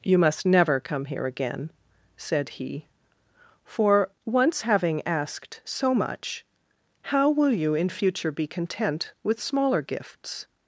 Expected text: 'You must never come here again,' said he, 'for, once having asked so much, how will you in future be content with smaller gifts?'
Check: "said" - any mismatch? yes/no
no